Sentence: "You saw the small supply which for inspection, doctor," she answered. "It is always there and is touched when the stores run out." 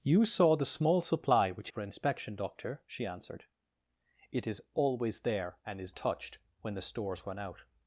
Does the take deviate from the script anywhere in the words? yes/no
no